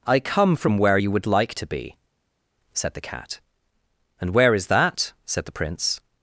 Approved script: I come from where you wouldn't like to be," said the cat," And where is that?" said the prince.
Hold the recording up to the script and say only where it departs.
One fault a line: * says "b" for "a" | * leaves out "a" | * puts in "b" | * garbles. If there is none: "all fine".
* says "would" for "wouldn't"